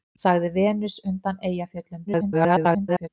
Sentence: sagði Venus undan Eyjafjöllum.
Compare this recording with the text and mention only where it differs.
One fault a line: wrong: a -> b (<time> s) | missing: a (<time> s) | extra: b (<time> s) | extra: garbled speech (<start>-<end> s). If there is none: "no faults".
extra: garbled speech (2.1-3.1 s)